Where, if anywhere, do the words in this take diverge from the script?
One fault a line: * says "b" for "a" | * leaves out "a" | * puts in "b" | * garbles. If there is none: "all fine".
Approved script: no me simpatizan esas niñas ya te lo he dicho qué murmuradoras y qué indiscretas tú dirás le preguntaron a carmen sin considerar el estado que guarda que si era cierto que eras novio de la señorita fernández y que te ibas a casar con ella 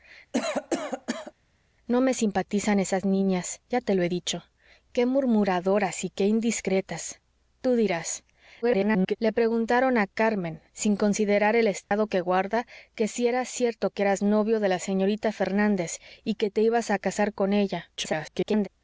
* garbles
* garbles